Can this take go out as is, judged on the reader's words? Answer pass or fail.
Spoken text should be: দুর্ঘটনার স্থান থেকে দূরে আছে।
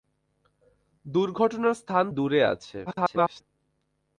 fail